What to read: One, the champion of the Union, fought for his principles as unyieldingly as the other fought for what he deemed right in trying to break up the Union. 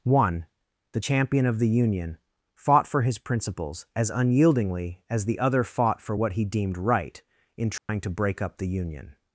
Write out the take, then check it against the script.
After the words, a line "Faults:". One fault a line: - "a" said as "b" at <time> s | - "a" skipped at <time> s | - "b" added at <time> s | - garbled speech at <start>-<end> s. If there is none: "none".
One, the champion of the Union, fought for his principles as unyieldingly as the other fought for what he deemed right in trying to break up the Union.
Faults:
none